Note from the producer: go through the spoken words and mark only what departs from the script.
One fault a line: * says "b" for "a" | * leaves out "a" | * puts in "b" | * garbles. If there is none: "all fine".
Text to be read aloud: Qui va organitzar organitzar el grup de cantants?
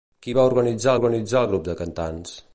all fine